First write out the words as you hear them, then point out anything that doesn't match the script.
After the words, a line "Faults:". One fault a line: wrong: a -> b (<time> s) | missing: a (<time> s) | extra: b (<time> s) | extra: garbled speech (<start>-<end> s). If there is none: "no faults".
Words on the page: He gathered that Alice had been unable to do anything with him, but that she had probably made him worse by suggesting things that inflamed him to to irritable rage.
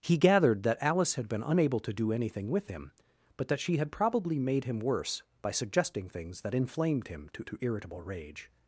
He gathered that Alice had been unable to do anything with him, but that she had probably made him worse by suggesting things that inflamed him to to irritable rage.
Faults:
no faults